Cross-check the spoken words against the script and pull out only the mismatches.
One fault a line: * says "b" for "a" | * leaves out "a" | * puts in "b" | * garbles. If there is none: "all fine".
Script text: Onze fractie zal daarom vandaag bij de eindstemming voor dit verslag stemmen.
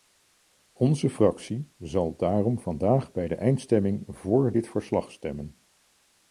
all fine